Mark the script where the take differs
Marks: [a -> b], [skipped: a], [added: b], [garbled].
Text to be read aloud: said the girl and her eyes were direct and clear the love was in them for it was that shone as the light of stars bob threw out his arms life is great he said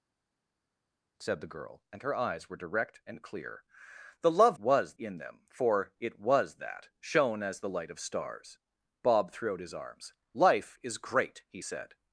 said the girl and her eyes were direct and clear the love was in them for it was that shone as the light of stars bob threw out his arms life is great he said